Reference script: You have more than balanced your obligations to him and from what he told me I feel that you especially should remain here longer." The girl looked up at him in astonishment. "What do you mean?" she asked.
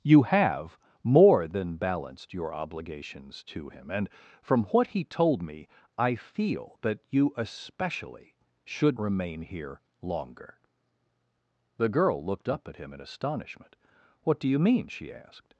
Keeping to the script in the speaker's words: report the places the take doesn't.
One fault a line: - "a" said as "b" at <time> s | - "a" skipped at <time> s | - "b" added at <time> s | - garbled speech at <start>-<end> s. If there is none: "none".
none